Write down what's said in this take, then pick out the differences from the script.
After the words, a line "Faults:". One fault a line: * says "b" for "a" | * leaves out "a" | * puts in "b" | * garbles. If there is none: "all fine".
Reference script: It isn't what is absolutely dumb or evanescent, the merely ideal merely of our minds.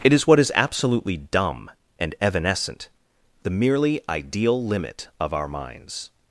It is what is absolutely dumb and evanescent, the merely ideal limit of our minds.
Faults:
* says "is" for "isn't"
* says "and" for "or"
* says "limit" for "merely"